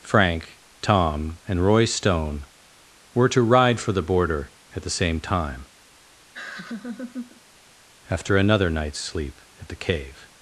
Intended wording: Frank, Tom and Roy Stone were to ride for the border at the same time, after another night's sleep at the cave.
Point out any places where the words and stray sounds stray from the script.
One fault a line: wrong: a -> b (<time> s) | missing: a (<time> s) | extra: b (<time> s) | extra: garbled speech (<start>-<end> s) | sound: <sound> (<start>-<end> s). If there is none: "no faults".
sound: laugh (6.3-7.4 s)